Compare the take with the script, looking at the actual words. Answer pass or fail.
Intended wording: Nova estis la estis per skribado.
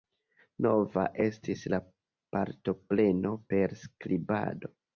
fail